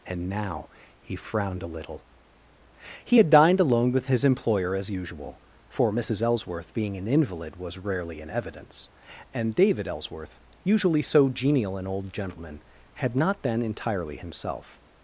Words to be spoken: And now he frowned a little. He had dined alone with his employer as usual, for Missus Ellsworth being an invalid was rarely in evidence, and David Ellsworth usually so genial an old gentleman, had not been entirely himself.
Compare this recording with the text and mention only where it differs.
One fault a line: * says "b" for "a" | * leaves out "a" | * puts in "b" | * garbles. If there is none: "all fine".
all fine